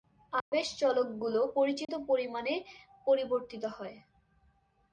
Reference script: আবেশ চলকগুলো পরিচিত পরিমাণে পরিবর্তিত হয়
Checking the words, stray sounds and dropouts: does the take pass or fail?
fail